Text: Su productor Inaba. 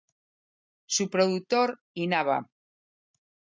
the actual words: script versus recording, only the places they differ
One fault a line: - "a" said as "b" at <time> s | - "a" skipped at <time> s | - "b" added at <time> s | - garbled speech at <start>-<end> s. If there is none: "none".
none